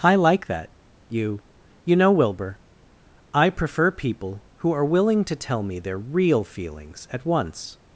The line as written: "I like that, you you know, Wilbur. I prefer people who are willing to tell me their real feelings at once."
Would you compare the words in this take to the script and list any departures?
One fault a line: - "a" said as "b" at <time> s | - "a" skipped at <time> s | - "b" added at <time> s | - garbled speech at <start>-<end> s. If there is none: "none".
none